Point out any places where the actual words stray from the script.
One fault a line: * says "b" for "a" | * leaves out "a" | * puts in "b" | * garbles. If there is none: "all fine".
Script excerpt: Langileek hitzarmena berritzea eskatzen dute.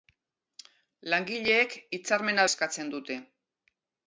* leaves out "berritzea"